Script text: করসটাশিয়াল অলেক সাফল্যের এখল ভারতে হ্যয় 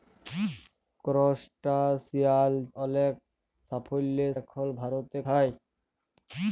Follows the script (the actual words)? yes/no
yes